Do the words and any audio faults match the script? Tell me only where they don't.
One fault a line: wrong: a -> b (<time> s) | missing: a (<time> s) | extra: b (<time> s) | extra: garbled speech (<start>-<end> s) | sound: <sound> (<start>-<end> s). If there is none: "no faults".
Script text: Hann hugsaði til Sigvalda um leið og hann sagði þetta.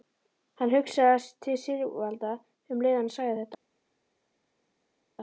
no faults